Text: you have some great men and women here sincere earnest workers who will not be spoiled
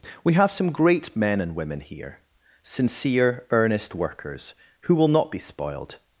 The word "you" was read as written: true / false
false